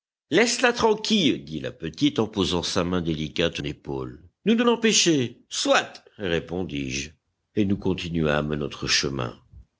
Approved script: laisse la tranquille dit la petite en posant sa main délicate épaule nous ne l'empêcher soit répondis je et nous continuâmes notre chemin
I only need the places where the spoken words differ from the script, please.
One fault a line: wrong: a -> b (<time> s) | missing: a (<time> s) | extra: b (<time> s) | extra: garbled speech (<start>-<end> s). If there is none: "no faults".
no faults